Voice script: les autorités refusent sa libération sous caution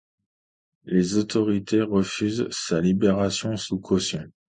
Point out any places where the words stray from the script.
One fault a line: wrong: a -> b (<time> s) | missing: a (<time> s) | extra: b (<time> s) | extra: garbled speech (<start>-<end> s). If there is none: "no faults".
no faults